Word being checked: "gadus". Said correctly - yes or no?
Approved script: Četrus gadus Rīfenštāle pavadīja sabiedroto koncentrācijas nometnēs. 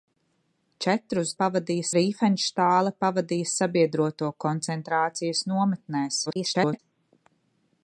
no